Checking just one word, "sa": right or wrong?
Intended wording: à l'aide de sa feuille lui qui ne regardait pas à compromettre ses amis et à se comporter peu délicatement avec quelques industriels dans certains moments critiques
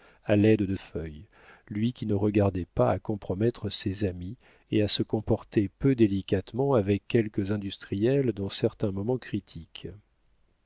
wrong